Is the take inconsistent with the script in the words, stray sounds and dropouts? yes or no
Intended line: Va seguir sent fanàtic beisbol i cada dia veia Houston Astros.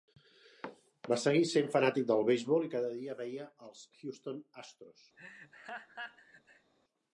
yes